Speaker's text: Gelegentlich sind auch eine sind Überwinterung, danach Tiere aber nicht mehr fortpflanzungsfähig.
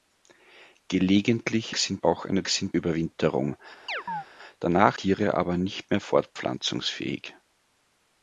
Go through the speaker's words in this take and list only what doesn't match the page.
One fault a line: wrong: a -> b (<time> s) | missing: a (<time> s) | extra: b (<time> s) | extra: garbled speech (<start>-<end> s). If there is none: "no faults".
no faults